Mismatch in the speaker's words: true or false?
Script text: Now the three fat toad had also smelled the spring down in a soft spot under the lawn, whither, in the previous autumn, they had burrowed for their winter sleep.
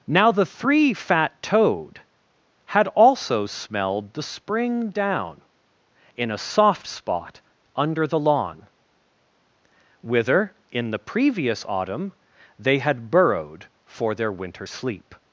false